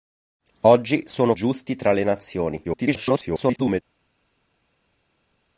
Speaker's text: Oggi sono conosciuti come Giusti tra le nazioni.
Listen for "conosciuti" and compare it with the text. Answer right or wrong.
wrong